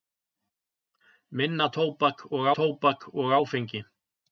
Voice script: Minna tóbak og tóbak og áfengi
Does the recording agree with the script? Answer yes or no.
yes